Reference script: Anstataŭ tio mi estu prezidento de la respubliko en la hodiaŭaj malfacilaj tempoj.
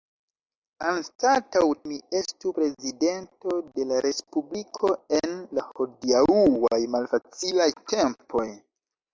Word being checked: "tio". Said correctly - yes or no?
no